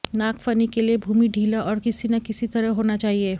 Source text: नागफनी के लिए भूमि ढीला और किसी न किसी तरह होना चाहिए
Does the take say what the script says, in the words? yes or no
yes